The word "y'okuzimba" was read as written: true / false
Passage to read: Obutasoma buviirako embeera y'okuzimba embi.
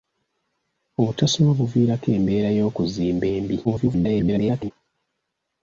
true